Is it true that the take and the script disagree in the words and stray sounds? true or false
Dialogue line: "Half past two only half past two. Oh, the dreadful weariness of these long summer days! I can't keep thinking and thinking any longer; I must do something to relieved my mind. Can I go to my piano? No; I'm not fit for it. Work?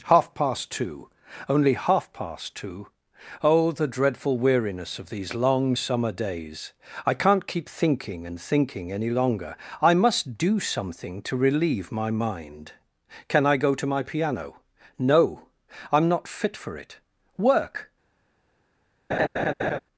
true